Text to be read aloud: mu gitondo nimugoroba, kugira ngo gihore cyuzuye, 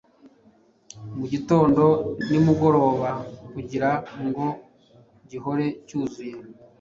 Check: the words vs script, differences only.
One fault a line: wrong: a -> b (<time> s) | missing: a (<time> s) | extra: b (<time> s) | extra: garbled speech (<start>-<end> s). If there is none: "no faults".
no faults